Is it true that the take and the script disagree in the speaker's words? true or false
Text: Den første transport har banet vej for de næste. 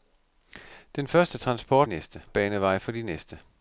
true